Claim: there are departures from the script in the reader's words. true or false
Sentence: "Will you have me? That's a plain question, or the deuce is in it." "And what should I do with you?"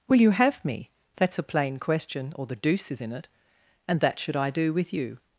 true